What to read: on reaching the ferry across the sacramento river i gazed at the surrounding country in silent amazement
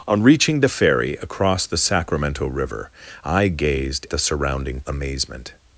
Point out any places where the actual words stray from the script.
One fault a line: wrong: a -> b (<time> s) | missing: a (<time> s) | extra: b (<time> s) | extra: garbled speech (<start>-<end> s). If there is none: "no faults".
missing: at (4.1 s)
missing: country in silent (4.8 s)